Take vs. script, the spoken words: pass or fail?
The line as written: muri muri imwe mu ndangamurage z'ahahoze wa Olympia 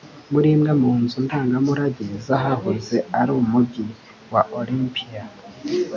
fail